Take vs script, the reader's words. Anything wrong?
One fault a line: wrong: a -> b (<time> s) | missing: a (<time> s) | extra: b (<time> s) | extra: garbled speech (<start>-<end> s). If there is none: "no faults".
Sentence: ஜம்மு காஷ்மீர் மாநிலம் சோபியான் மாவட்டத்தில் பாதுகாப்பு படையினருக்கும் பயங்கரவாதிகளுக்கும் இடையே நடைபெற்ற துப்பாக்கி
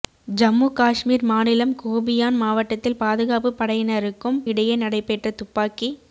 missing: பயங்கரவாதிகளுக்கும் (4.4 s)